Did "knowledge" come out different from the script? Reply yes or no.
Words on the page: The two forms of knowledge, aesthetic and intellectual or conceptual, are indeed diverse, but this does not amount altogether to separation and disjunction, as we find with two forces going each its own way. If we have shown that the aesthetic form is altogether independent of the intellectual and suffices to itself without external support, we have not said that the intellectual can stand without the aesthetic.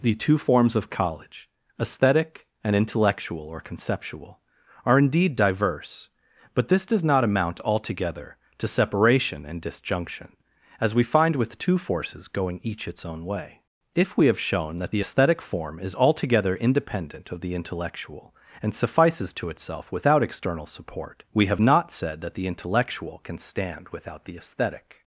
yes